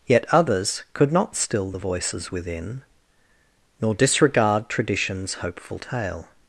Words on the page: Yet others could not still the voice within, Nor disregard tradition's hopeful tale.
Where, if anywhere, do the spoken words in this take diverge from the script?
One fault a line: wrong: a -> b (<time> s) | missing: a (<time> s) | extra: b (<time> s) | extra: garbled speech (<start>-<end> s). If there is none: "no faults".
wrong: voice -> voices (1.8 s)